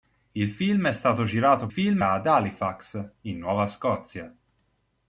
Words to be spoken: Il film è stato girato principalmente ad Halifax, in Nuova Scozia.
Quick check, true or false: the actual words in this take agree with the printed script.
false